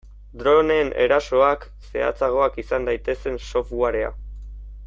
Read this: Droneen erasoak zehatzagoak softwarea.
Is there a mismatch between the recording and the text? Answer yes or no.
yes